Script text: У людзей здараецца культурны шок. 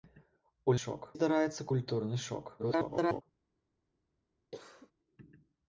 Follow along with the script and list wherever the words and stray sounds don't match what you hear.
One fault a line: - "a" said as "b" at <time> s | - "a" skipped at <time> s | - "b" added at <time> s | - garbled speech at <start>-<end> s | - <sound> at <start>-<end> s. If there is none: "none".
- "людзей" said as "шок" at 0.8 s
- garbled speech at 2.6-3.2 s
- cough at 4.5-4.9 s